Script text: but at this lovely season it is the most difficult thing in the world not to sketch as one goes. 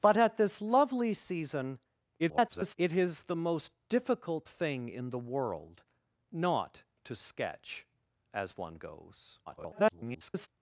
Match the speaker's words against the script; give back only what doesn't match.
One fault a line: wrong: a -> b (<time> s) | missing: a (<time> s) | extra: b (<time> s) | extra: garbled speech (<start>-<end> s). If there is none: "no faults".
extra: garbled speech (2.2-2.8 s)
extra: garbled speech (9.5-10.5 s)